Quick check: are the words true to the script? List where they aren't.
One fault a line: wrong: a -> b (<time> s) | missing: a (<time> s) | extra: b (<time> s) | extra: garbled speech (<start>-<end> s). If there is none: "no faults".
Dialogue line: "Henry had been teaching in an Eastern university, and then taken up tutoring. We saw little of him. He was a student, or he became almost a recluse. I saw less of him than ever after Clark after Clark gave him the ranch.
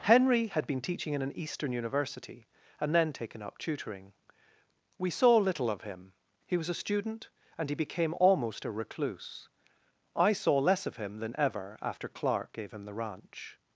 wrong: or -> and (7.6 s)
missing: after Clark (12.5 s)